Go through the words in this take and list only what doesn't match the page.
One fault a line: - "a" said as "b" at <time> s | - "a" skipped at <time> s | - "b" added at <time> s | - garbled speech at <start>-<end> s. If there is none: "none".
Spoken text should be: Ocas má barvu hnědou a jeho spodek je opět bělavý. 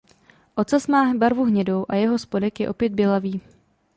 none